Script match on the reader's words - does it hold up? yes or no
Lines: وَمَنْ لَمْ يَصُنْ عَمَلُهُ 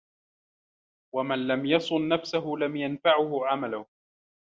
no